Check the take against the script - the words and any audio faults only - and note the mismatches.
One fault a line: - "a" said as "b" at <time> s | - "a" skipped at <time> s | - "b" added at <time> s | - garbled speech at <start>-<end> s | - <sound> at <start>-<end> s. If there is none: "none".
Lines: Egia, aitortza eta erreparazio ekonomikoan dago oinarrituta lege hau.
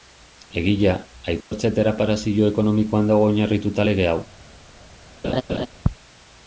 - dropout at 1.4-1.5 s
- laugh at 5.2-5.7 s